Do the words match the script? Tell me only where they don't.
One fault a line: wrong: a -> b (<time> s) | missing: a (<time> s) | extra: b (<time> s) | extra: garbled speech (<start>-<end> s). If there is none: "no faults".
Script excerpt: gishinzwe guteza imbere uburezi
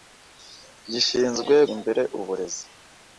missing: guteza (1.6 s)